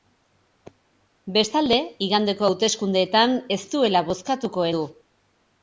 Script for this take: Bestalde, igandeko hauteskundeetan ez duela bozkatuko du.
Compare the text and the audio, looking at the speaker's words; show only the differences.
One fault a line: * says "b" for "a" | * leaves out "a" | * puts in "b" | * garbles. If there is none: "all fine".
all fine